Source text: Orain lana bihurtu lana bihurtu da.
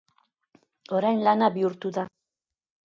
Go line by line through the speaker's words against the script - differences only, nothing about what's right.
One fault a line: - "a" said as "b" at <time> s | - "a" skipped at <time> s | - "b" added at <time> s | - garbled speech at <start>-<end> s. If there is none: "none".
- "lana bihurtu" skipped at 1.9 s